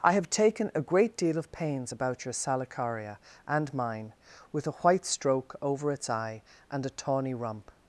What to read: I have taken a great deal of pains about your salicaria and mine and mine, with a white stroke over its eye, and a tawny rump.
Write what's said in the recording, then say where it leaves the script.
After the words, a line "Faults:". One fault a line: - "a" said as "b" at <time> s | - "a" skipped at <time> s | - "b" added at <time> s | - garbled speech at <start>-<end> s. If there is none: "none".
I have taken a great deal of pains about your salicaria and mine, with a white stroke over its eye, and a tawny rump.
Faults:
- "and mine" skipped at 4.1 s